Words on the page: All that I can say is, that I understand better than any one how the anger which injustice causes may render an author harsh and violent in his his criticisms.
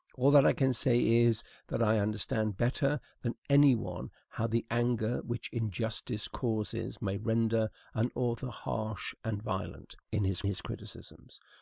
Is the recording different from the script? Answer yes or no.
no